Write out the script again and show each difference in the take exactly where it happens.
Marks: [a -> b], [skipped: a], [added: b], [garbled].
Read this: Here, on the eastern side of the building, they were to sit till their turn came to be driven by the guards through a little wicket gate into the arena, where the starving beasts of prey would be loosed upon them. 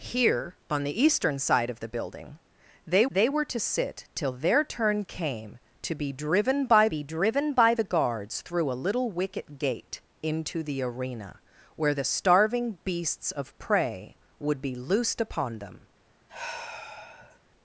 Here, on the eastern side of the building, they [added: they] were to sit till their turn came to be driven by [added: be driven by] the guards through a little wicket gate into the arena, where the starving beasts of prey would be loosed upon them.